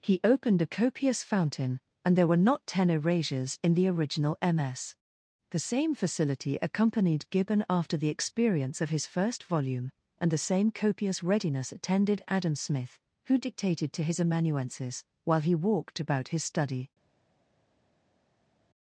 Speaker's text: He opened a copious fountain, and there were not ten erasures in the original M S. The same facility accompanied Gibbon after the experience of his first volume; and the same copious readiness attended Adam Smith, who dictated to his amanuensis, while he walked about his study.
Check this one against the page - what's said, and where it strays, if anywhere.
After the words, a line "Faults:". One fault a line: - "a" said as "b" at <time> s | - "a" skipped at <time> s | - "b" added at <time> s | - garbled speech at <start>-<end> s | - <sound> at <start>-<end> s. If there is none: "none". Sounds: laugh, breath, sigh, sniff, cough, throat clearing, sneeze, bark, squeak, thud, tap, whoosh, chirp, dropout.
He opened a copious fountain, and there were not ten erasures in the original M S. The same facility accompanied Gibbon after the experience of his first volume; and the same copious readiness attended Adam Smith, who dictated to his amanuensis, while he walked about his study.
Faults:
none